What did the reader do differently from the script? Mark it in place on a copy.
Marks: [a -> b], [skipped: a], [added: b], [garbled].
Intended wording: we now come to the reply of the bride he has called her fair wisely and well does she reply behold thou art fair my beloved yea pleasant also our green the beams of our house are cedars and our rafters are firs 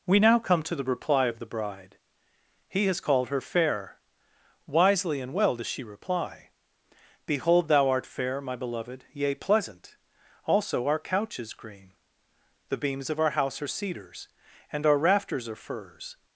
we now come to the reply of the bride he has called her fair wisely and well does she reply behold thou art fair my beloved yea pleasant also our [added: couch is] green the beams of our house are cedars and our rafters are firs